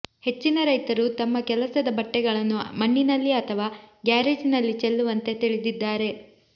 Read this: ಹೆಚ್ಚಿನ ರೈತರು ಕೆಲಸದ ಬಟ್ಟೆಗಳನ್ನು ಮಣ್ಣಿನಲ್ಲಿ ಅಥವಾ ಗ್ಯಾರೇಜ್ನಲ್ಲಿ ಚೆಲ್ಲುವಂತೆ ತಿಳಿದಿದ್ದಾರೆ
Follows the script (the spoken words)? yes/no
no